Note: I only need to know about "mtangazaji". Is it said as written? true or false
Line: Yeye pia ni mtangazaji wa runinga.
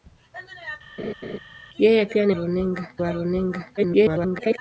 false